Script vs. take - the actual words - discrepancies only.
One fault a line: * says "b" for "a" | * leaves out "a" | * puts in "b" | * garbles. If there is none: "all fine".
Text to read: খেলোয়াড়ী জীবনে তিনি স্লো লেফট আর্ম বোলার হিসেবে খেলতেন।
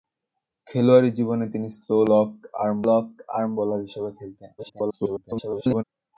* puts in "লেফট আর্ম"
* garbles